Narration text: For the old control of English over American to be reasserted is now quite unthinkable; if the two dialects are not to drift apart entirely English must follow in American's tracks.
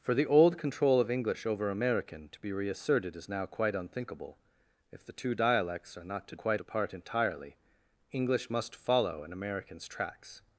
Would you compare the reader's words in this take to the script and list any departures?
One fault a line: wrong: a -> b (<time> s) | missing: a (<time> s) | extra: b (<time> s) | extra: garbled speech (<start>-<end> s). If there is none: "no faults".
wrong: drift -> quite (6.3 s)